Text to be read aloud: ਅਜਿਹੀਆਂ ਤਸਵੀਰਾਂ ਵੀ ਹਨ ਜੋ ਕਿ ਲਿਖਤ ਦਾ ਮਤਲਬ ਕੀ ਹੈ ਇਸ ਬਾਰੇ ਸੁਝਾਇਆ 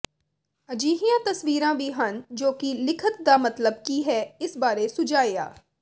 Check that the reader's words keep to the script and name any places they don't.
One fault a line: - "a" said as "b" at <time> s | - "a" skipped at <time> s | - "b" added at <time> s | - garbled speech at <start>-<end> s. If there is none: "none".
none